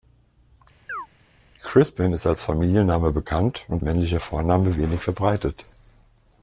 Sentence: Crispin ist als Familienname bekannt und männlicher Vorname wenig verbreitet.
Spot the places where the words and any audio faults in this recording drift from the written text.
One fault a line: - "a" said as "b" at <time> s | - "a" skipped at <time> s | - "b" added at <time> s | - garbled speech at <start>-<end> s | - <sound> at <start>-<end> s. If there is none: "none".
- chirp at 0.9-1.1 s